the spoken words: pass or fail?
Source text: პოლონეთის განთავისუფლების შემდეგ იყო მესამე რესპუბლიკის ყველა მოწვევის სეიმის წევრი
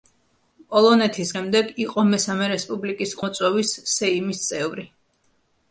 fail